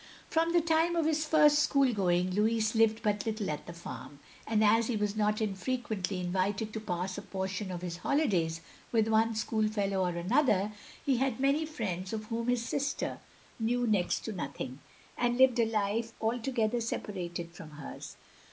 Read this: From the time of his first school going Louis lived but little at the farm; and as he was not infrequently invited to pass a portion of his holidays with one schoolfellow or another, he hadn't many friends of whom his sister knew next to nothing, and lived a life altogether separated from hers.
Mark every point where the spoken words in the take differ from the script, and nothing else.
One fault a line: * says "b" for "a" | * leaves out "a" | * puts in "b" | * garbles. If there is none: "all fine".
* says "had" for "hadn't"